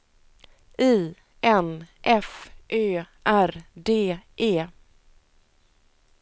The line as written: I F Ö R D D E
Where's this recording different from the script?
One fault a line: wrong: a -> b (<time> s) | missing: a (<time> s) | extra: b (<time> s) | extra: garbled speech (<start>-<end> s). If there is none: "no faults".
extra: N (1.4 s)
missing: D (4.2 s)